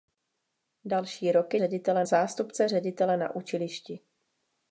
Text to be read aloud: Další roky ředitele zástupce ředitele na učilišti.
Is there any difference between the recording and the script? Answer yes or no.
no